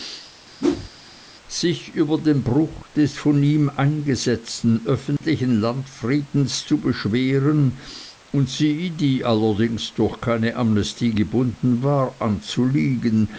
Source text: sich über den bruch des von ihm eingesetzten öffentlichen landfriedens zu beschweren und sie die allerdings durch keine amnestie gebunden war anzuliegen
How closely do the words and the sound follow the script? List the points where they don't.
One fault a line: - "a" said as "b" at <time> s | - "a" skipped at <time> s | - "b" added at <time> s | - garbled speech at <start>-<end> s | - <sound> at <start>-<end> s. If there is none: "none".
- whoosh at 0.6-0.9 s
- dropout at 5.2-5.2 s